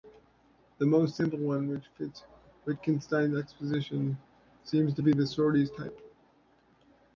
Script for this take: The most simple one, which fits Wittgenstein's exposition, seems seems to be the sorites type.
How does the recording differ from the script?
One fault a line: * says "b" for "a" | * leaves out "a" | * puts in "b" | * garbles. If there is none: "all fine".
* leaves out "seems"